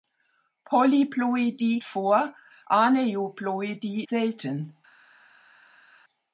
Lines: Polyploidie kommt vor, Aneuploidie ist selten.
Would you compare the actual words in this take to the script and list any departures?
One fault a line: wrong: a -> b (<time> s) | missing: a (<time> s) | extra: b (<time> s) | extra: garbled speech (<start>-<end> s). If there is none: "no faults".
missing: kommt (1.8 s)
missing: ist (4.1 s)